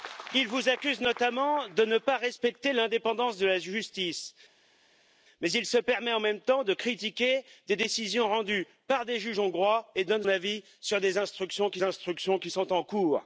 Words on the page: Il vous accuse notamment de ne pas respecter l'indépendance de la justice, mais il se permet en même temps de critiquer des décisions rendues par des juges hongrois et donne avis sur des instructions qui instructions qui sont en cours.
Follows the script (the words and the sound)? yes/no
yes